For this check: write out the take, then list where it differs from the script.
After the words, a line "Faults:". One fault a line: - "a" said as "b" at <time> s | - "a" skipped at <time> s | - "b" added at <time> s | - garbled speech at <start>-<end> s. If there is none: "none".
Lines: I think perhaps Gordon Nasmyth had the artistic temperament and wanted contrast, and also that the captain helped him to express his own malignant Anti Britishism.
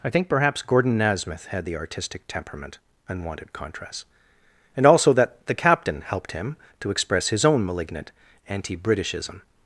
I think perhaps Gordon Nasmyth had the artistic temperament and wanted contrast, and also that the captain helped him to express his own malignant Anti Britishism.
Faults:
none